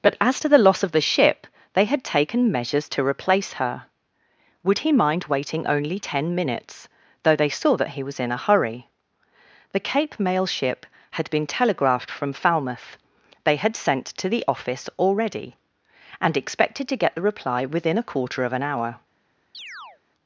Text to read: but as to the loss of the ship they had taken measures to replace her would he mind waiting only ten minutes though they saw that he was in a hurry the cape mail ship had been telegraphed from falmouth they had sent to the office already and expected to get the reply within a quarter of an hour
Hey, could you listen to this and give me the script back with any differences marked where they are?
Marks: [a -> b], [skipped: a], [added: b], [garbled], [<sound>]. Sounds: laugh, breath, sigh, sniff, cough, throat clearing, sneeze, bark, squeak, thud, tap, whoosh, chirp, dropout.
but as to the loss of the ship they had taken measures to replace her would he mind waiting only ten minutes though they saw that he was in a hurry the cape mail ship had been telegraphed from falmouth they had sent to the office already and expected to get the reply within a quarter of an hour [chirp]